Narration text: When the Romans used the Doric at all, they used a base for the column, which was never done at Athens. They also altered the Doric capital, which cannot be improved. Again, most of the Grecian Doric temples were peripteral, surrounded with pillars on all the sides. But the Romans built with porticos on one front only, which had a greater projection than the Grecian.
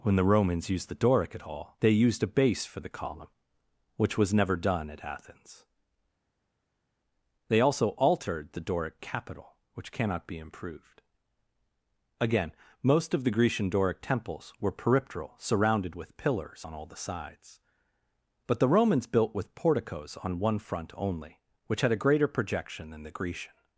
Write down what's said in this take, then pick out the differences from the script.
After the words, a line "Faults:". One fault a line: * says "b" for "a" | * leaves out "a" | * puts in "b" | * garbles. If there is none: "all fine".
When the Romans used the Doric at all, they used a base for the column, which was never done at Athens. They also altered the Doric capital, which cannot be improved. Again, most of the Grecian Doric temples were peripteral, surrounded with pillars on all the sides. But the Romans built with porticos on one front only, which had a greater projection than the Grecian.
Faults:
all fine